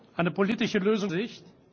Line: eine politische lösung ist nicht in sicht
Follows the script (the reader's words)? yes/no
no